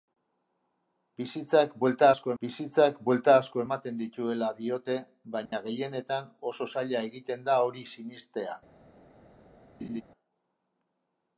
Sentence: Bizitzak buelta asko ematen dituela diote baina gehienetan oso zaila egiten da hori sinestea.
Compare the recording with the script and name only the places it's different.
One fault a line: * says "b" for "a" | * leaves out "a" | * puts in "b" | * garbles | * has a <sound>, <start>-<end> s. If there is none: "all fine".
* puts in "bizitzak buelta asko"
* has a dropout, 5.5-5.5 s
* has a laugh, 9.8-10.0 s